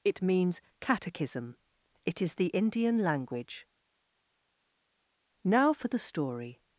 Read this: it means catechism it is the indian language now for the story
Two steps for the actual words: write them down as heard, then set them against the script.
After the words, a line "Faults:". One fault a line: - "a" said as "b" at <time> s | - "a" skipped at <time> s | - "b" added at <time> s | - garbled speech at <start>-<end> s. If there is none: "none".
it means catechism it is the indian language now for the story
Faults:
none